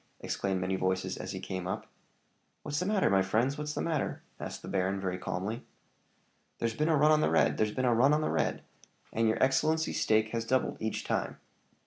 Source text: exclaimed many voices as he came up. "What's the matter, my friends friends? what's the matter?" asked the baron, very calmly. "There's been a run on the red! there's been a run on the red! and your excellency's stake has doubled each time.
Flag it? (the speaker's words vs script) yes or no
yes